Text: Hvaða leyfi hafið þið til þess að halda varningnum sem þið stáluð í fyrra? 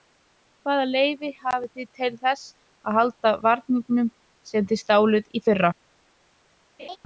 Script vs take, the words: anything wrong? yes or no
no